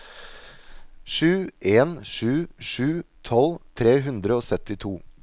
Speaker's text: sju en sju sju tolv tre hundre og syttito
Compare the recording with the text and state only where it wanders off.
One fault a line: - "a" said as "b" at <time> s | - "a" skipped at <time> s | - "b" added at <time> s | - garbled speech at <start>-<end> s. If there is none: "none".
none